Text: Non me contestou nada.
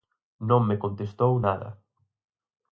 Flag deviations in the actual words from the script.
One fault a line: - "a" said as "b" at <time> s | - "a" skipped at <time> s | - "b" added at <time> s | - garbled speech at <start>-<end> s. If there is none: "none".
none